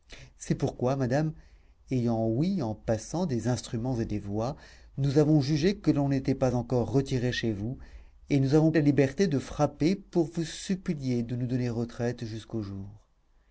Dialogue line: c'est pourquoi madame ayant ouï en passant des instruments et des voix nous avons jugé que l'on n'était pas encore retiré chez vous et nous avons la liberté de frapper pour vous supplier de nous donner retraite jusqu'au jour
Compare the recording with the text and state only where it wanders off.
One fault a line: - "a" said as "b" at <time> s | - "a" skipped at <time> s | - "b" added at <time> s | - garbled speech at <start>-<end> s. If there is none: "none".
none